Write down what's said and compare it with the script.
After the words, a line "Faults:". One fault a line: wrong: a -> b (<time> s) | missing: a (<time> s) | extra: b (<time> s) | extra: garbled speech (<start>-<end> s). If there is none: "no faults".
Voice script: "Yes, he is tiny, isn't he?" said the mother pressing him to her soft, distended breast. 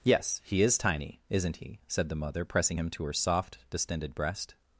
"Yes, he is tiny, isn't he?" said the mother pressing him to her soft, distended breast.
Faults:
no faults